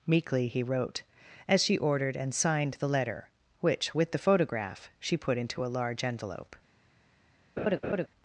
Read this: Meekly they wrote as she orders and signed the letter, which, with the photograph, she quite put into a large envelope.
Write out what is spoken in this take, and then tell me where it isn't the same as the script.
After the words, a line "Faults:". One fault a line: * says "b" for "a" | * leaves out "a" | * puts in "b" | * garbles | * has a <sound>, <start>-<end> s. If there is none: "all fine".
Meekly he wrote as she ordered and signed the letter, which, with the photograph, she put into a large envelope.
Faults:
* says "he" for "they"
* says "ordered" for "orders"
* leaves out "quite"
* has a laugh, 7.6-8.1 s